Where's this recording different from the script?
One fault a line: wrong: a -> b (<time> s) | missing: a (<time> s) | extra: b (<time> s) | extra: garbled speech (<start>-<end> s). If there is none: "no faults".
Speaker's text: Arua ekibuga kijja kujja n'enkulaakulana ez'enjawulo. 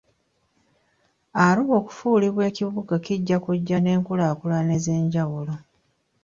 extra: okufuulibwa (1.8 s)